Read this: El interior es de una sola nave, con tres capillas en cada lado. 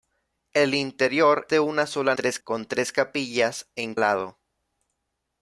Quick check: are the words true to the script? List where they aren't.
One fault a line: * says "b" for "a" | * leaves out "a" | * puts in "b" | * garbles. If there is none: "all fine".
* leaves out "es"
* says "tres" for "nave"
* leaves out "cada"